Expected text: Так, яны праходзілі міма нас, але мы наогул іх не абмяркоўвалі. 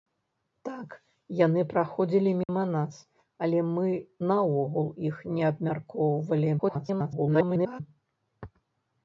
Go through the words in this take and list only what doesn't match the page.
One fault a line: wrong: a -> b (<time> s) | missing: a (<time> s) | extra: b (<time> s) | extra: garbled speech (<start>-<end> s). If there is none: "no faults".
extra: garbled speech (6.6-7.8 s)